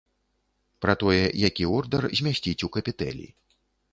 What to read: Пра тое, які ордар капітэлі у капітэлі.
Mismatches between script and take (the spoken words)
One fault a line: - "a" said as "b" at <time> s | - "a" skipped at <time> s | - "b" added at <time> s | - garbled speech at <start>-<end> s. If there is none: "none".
- "капітэлі" said as "змясціць" at 2.2 s